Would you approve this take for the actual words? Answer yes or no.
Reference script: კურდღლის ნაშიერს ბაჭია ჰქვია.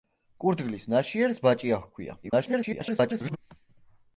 no